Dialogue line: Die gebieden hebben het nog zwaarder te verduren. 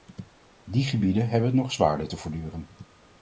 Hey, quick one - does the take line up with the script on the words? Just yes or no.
yes